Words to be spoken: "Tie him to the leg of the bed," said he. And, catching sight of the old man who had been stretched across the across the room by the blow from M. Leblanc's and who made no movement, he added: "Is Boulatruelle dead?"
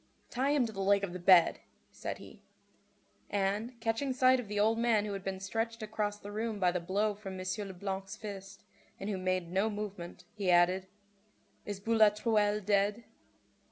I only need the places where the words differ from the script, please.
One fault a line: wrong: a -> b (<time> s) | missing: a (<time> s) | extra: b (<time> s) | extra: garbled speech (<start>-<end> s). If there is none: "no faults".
missing: across the (6.3 s)
extra: fist (8.1 s)